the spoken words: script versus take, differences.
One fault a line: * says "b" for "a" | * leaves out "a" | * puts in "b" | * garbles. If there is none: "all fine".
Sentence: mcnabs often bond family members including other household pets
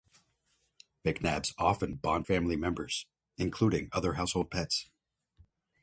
all fine